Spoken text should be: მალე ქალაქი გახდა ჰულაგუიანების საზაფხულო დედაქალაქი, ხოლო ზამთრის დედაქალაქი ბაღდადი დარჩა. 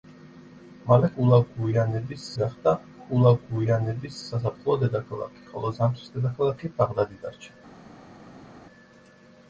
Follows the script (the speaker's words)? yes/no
no